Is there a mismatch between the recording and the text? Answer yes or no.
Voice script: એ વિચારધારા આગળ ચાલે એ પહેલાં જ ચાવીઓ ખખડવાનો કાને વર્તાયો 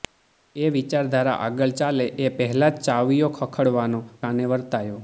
no